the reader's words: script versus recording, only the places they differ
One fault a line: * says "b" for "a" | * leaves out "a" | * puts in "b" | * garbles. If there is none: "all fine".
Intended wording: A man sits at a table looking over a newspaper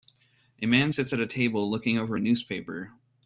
all fine